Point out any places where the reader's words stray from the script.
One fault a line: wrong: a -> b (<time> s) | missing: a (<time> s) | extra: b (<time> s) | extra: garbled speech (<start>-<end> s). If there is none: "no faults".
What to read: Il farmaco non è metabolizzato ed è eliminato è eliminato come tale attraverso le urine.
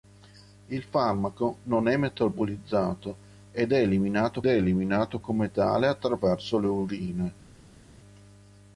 no faults